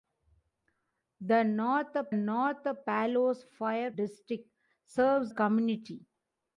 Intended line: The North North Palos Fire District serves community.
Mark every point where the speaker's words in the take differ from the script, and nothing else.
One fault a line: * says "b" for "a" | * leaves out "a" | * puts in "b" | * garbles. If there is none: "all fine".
all fine